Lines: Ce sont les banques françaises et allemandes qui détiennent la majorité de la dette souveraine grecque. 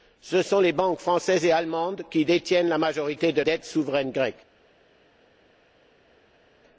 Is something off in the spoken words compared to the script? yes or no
yes